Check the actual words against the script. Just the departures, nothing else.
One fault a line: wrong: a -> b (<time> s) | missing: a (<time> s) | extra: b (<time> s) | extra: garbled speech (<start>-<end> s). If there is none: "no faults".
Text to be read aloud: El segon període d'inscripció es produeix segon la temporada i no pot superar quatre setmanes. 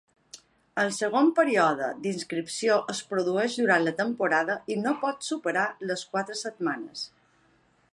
wrong: segon -> durant (3.6 s)
extra: les (5.9 s)